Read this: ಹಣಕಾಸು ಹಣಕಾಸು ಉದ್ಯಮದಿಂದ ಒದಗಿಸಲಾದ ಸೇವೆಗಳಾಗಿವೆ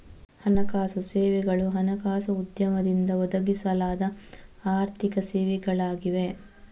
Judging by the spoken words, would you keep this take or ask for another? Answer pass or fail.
fail